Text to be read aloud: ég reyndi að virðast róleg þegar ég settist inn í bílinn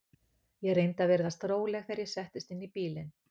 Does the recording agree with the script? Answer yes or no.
yes